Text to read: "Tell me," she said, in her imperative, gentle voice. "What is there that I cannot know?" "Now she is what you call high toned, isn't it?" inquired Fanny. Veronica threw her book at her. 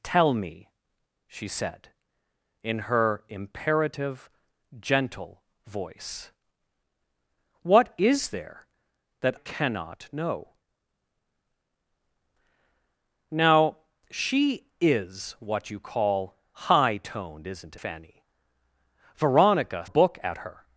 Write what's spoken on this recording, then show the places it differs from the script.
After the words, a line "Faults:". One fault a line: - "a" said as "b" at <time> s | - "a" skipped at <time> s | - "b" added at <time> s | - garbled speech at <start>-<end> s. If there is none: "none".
"Tell me," she said, in her imperative, gentle voice. "What is there that cannot know?" "Now she is what you call high toned, isn't Fanny. Veronica book at her.
Faults:
- "I" skipped at 9.4 s
- "it inquired" skipped at 17.8 s
- "threw her" skipped at 19.8 s